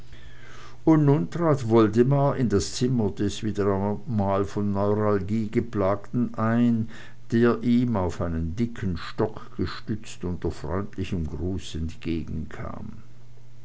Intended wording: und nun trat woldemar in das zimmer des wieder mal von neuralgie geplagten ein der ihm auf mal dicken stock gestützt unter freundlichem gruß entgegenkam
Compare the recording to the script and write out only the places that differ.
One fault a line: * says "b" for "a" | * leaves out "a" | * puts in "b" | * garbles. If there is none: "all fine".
* says "einen" for "mal"